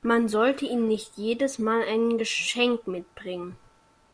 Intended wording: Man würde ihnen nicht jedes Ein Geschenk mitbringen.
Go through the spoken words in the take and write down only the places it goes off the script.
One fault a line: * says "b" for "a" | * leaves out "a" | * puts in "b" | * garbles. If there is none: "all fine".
* says "sollte" for "würde"
* puts in "Mal"